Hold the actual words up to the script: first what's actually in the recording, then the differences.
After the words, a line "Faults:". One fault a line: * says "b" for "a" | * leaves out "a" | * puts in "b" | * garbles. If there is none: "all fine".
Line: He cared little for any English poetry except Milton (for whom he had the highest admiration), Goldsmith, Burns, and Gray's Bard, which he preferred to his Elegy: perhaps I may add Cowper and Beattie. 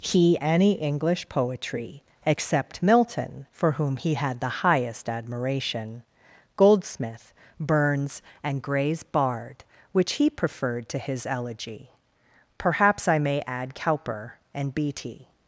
He any English poetry except Milton (for whom he had the highest admiration), Goldsmith, Burns, and Gray's Bard, which he preferred to his Elegy: perhaps I may add Cowper and Beattie.
Faults:
* leaves out "cared little for"